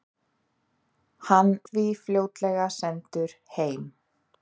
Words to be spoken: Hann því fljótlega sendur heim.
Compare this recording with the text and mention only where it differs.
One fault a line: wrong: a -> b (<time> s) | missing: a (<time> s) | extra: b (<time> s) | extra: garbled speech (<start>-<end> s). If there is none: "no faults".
no faults